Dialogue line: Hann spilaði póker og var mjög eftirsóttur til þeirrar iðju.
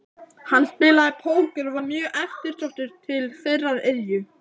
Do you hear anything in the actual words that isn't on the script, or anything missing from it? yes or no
no